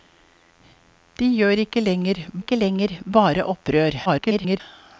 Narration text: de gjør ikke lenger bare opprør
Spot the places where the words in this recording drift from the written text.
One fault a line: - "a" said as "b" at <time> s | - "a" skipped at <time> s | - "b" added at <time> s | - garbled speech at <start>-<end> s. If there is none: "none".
- "ikke lenger" added at 2.4 s
- garbled speech at 4.1-4.6 s